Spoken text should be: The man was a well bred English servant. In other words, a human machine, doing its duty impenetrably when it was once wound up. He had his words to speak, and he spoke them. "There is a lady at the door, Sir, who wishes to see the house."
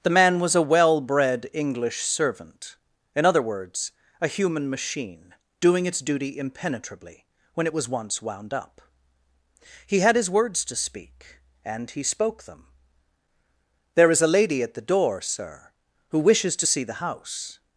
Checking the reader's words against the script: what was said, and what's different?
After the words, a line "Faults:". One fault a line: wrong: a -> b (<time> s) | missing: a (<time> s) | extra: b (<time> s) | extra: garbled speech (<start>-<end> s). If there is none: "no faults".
The man was a well bred English servant. In other words, a human machine, doing its duty impenetrably when it was once wound up. He had his words to speak, and he spoke them. "There is a lady at the door, Sir, who wishes to see the house."
Faults:
no faults